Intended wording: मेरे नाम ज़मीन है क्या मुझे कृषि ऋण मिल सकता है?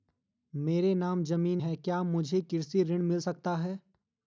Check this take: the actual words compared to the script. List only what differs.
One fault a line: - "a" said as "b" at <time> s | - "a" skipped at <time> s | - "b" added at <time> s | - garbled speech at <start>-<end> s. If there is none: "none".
none